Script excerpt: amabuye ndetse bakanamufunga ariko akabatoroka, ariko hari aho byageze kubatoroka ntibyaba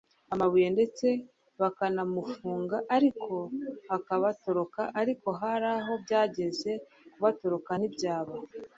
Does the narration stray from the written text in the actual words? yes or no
no